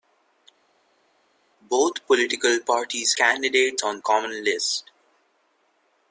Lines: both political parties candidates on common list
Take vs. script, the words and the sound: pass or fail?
pass